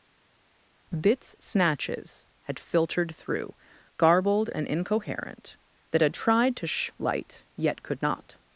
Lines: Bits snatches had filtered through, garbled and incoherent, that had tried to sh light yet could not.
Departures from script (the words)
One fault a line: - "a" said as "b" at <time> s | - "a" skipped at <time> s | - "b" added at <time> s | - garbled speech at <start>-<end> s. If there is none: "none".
none